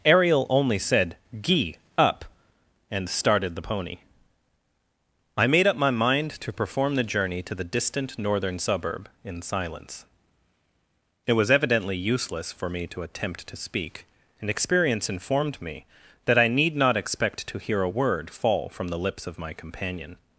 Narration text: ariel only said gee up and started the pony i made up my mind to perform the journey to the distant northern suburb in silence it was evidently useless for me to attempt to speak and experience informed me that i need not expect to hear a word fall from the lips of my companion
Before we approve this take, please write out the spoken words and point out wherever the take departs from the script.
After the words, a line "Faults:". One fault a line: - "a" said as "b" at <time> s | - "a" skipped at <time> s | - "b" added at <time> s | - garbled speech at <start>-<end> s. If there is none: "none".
ariel only said gee up and started the pony i made up my mind to perform the journey to the distant northern suburb in silence it was evidently useless for me to attempt to speak and experience informed me that i need not expect to hear a word fall from the lips of my companion
Faults:
none